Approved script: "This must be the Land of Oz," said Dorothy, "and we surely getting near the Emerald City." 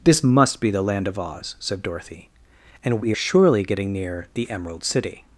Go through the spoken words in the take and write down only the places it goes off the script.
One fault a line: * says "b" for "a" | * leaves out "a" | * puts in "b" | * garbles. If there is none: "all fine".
all fine